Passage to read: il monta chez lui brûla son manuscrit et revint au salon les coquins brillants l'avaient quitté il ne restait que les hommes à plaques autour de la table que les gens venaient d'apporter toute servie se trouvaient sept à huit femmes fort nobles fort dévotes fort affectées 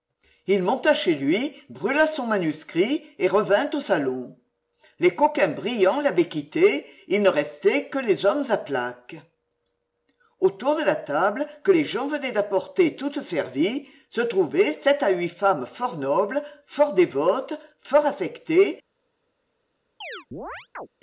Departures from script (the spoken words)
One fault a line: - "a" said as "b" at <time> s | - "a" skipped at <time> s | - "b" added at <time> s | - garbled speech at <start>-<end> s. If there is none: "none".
none